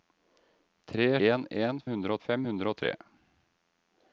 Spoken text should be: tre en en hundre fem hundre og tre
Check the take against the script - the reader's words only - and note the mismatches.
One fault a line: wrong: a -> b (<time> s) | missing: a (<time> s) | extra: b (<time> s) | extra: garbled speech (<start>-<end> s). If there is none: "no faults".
no faults